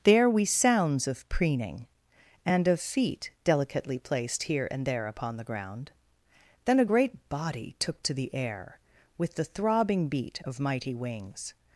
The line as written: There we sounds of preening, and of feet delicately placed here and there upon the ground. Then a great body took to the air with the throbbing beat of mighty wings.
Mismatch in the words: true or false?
false